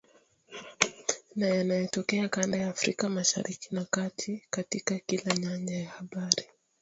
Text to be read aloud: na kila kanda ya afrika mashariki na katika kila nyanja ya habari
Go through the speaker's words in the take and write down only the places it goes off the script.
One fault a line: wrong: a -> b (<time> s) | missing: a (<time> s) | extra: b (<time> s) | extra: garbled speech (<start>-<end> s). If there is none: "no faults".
wrong: kila -> yanayotokea (1.5 s)
extra: kati (3.8 s)